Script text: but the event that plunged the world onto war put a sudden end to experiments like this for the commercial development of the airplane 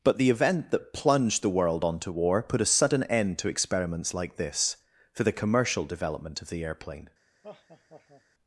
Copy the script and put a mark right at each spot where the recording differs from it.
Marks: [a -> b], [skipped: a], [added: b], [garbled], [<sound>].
but the event that plunged the world onto war put a sudden end to experiments like this for the commercial development of the airplane [laugh]